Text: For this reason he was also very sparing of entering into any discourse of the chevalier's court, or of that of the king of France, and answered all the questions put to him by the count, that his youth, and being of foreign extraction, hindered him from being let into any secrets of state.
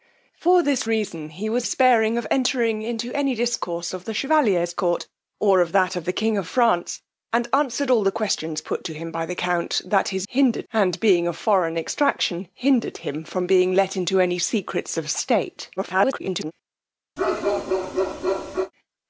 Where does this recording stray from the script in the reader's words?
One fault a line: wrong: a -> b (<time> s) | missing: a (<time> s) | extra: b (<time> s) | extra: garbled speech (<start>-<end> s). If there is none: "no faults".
missing: also very (1.7 s)
wrong: youth -> hindered (10.3 s)
extra: garbled speech (15.8-16.5 s)